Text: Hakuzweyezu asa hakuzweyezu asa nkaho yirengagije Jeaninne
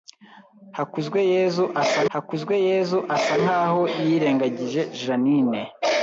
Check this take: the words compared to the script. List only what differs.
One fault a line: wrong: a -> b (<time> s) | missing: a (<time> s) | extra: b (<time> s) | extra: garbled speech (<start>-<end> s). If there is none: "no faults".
no faults